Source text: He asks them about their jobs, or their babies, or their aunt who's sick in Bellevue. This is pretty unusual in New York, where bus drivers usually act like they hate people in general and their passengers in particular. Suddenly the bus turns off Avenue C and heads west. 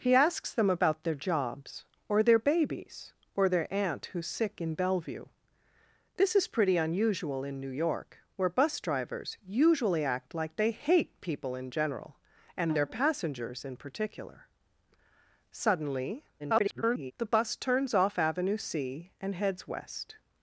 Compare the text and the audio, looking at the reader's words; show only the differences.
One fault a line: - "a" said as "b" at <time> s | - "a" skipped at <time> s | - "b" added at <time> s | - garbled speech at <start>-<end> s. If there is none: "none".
- garbled speech at 16.4-17.1 s